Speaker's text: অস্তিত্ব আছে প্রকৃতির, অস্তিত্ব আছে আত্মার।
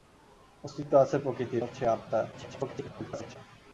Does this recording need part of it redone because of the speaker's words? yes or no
yes